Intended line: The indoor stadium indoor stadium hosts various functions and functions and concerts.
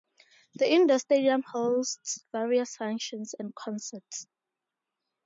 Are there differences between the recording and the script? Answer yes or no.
yes